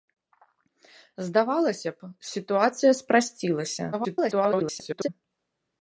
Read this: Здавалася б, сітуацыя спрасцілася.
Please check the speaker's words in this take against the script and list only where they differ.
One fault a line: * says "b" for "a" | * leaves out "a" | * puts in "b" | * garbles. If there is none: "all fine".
* garbles